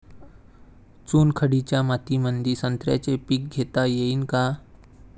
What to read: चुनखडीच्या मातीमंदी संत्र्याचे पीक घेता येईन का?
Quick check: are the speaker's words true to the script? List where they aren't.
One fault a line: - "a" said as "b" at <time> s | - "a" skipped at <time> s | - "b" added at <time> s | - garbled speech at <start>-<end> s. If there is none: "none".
none